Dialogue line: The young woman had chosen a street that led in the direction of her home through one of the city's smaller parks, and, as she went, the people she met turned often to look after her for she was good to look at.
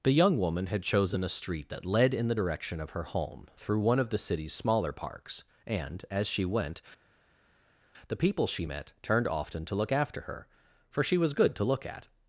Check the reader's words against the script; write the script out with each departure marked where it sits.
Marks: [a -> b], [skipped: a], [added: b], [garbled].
The young woman had chosen a street that led in the direction of her home through one of the city's smaller parks, and, as she went, the people she met turned often to look after her for she was good to look at.